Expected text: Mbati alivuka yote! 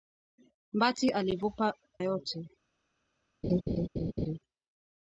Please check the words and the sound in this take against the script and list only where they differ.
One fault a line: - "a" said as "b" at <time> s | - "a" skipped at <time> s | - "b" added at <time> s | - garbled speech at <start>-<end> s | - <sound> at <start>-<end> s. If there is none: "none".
- laugh at 3.4-4.4 s